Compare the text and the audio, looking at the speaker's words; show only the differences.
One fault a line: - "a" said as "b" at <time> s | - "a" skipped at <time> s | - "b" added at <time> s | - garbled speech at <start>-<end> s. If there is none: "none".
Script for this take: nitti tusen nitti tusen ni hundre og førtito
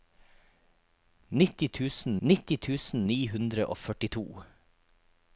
none